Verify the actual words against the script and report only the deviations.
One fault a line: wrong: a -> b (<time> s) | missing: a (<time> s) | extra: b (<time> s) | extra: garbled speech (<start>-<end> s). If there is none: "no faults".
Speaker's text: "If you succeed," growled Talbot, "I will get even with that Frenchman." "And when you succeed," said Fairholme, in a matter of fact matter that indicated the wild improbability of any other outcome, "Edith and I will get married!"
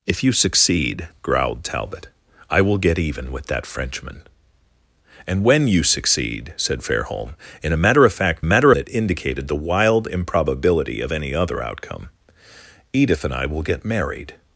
no faults